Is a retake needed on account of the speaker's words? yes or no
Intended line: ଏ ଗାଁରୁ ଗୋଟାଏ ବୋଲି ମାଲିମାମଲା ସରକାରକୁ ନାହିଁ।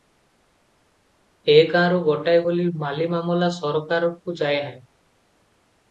yes